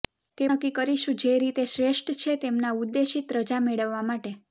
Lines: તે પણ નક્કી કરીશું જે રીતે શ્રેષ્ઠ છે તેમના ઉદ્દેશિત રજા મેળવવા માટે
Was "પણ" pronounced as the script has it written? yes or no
no